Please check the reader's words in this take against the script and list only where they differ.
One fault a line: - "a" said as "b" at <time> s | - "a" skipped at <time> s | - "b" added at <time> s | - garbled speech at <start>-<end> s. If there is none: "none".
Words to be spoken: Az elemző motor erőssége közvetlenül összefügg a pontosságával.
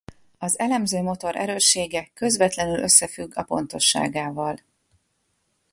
none